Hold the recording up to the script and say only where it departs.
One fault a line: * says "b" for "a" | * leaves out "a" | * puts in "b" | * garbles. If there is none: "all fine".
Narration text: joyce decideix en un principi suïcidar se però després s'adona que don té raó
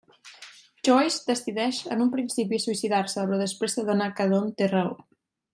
all fine